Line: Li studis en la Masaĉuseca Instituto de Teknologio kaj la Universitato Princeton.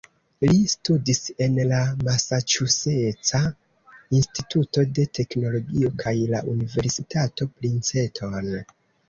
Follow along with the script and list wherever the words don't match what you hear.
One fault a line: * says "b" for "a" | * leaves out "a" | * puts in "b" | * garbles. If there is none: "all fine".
all fine